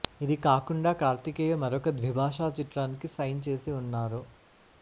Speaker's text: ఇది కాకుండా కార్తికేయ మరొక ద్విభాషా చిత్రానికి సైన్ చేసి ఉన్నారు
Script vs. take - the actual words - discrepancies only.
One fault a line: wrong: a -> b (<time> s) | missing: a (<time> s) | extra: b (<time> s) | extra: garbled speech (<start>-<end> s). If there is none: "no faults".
no faults